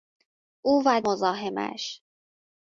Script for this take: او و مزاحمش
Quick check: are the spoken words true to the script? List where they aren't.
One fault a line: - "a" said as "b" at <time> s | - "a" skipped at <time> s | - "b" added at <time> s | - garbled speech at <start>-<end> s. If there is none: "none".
none